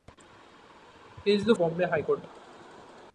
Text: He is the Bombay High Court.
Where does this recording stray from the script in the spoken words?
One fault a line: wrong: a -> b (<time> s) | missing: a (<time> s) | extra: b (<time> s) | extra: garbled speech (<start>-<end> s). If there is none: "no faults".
no faults